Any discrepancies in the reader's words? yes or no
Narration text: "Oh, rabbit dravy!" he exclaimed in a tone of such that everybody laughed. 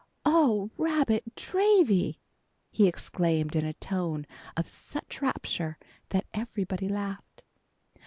yes